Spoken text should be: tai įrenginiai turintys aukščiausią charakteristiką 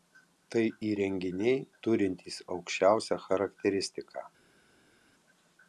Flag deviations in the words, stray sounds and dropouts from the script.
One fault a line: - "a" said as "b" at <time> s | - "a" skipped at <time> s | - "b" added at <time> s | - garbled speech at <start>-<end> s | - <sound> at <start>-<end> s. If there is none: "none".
none